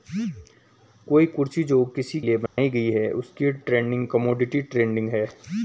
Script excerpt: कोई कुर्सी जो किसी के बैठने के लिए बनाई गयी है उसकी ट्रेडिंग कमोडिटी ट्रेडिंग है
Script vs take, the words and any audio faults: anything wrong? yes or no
yes